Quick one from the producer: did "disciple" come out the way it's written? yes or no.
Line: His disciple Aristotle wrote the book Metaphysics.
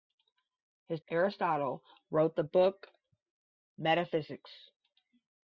no